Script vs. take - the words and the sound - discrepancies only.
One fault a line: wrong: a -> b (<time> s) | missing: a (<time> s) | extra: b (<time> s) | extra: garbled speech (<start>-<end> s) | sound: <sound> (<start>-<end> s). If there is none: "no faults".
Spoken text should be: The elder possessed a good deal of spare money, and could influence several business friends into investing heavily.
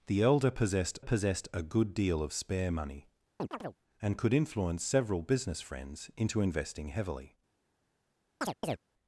extra: possessed (1.0 s)
sound: chirp (3.4-3.8 s)
sound: chirp (8.4-8.8 s)